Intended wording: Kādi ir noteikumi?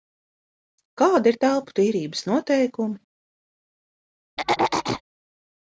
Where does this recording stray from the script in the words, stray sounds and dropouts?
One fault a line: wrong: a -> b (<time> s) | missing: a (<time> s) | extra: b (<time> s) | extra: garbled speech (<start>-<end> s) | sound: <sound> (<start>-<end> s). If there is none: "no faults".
extra: telpu tīrības (1.4 s)
sound: throat clearing (4.4-5.0 s)